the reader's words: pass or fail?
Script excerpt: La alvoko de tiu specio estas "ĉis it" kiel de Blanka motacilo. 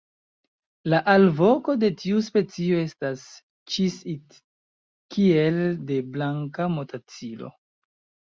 pass